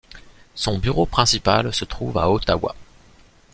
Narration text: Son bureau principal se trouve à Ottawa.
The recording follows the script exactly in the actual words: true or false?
true